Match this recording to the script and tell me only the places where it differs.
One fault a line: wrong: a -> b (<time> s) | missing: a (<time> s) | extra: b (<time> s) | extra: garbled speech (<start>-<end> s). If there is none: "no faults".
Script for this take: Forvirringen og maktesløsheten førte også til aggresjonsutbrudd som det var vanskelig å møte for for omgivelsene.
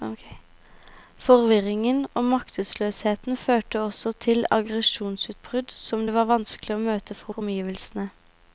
no faults